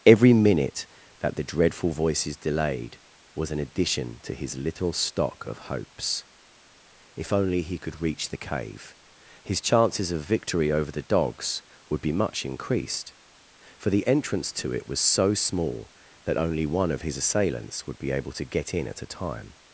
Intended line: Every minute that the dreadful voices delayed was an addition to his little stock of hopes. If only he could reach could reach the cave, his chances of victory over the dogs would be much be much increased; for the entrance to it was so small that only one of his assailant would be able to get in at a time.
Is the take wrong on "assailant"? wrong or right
wrong